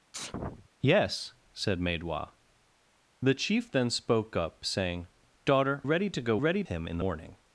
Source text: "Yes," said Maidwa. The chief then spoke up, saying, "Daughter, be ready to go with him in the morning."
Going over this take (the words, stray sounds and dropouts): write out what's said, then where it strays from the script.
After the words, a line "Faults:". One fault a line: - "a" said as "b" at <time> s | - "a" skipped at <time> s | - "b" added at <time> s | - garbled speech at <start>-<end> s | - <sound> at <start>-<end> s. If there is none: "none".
"Yes," said Maidwa. The chief then spoke up, saying, "Daughter, ready to go ready him in morning."
Faults:
- sneeze at 0.1-0.7 s
- "be" skipped at 5.8 s
- "with" said as "ready" at 6.3 s
- "the" skipped at 7.0 s